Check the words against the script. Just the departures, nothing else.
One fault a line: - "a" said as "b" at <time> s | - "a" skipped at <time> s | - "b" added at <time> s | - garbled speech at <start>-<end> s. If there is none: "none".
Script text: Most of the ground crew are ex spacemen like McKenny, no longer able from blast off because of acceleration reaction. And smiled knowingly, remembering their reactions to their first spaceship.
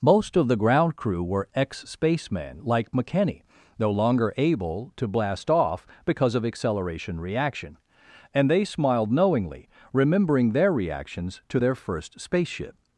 - "are" said as "were" at 1.2 s
- "from" said as "to" at 5.0 s
- "they" added at 8.5 s